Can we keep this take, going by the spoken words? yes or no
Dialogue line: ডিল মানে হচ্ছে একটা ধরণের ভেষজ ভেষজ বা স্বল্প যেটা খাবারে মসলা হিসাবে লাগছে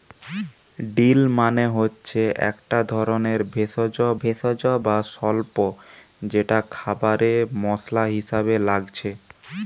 yes